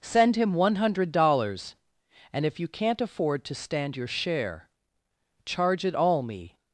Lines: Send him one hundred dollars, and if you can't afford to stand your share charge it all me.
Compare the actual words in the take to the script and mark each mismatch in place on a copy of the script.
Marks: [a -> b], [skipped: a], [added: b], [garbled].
Send him one hundred dollars, and if you can't afford to stand your share charge it all me.